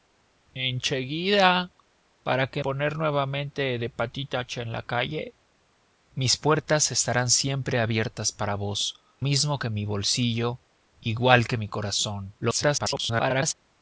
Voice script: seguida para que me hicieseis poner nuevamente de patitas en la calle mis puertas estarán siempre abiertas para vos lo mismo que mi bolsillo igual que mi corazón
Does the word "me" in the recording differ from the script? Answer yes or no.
yes